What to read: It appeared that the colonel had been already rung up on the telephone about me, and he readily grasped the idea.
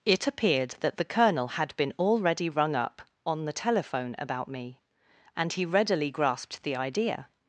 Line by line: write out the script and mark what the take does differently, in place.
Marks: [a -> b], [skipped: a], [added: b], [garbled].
It appeared that the colonel had been already rung up on the telephone about me, and he readily grasped the idea.